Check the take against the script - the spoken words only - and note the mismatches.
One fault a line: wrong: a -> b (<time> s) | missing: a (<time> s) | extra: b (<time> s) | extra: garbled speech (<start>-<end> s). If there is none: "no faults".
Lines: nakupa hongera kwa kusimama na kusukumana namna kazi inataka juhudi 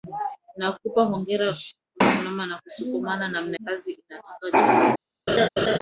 no faults